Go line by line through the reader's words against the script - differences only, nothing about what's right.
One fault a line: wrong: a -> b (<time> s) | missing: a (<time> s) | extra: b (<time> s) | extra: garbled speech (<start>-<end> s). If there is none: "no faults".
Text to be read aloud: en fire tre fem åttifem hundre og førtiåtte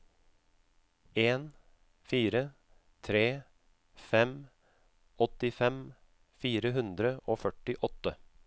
extra: fire (6.5 s)